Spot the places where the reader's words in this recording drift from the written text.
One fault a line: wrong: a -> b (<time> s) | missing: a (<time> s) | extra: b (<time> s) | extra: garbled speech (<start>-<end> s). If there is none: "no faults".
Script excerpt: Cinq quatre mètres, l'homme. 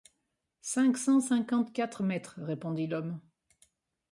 extra: cent cinquante (1.0 s)
extra: répondit (2.4 s)